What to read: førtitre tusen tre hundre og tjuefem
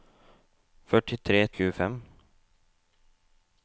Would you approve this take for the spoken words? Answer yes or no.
no